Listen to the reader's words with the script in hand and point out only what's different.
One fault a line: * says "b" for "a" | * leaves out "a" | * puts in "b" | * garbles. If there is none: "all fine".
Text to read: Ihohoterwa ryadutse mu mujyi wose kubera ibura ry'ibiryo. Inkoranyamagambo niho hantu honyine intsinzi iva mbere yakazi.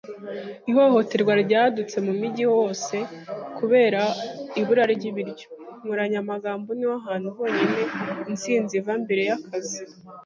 all fine